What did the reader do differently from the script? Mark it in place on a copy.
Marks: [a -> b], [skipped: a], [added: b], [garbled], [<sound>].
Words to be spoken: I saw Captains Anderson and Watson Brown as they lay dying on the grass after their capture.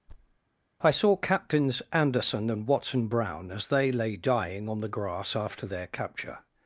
[thud] I saw Captains Anderson and Watson Brown as they lay dying on the grass after their capture.